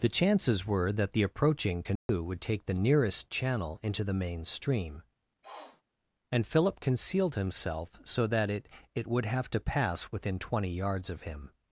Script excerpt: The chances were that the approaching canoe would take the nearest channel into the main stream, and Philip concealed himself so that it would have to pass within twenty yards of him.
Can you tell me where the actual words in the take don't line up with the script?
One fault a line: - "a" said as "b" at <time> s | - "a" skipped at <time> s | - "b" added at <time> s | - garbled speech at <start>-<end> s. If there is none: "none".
- "it" added at 8.9 s